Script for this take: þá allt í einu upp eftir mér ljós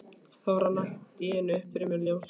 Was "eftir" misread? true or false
true